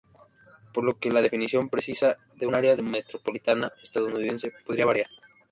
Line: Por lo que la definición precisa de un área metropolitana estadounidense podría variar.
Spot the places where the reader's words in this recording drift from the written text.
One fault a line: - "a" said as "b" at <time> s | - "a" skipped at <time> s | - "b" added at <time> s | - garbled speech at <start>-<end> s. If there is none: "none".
none